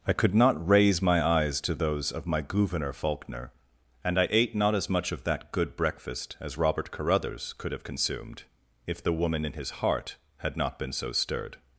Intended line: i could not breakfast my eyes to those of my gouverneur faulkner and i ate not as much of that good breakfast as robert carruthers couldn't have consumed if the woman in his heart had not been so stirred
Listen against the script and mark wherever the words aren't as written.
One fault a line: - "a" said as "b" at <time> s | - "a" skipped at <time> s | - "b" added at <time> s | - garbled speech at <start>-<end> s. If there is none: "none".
- "breakfast" said as "raise" at 0.7 s
- "couldn't" said as "could" at 7.6 s